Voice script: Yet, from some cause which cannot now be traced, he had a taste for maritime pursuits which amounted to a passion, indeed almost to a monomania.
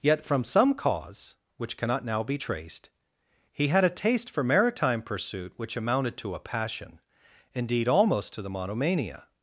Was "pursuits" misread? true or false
true